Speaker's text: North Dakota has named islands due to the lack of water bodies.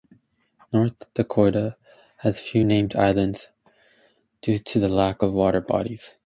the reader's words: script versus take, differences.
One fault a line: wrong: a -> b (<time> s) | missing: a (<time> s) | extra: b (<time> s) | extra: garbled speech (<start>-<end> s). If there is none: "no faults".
extra: few (2.4 s)